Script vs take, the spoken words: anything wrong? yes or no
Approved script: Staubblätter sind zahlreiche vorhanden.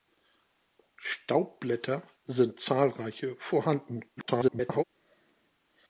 yes